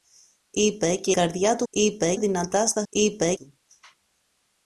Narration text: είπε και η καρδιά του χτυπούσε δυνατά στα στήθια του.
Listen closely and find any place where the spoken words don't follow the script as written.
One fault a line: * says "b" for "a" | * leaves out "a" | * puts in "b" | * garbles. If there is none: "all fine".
* leaves out "η"
* says "είπε" for "χτυπούσε"
* says "είπε" for "στήθια"